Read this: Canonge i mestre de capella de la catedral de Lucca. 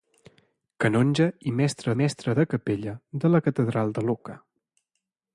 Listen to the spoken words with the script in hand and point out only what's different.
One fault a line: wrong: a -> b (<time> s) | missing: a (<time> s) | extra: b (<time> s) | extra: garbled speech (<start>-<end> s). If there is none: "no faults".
extra: mestre (2.0 s)